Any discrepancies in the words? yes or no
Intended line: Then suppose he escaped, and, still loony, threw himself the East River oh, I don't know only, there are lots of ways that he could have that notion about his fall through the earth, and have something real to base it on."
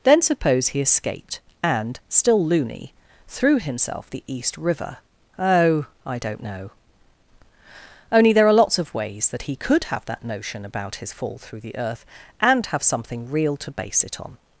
no